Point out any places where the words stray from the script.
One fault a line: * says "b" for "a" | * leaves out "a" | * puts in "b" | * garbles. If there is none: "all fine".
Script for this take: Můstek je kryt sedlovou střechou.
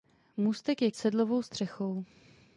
* leaves out "kryt"